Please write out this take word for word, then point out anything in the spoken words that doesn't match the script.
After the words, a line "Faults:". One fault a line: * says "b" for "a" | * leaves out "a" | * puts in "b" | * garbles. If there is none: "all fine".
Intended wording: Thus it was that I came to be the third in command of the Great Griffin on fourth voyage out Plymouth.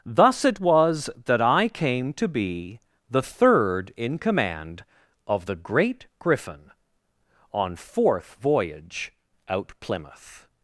Thus it was that I came to be the third in command of the Great Griffin on fourth voyage out Plymouth.
Faults:
all fine